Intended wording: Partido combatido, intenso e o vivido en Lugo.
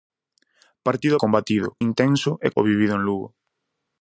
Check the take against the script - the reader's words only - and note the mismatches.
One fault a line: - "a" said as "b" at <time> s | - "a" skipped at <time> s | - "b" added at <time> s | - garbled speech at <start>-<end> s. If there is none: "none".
none